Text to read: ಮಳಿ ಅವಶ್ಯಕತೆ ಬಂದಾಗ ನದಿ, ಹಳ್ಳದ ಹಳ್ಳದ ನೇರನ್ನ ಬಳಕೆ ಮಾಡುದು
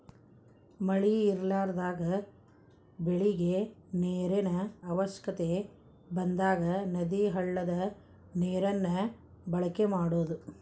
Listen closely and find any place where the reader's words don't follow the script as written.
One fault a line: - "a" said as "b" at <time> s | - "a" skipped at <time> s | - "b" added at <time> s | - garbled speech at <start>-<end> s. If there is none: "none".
- "ಇರಲಾರದಾಗ ಬೆಳಿಗೆ ನೇರಿನ" added at 1.2 s
- "ಹಳ್ಳದ" skipped at 7.7 s